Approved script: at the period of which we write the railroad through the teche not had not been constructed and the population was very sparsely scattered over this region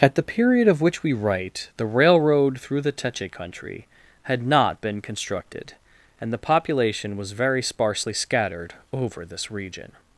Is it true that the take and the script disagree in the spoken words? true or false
true